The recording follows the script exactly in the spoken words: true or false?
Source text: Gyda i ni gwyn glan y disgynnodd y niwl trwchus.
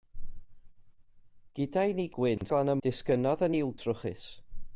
true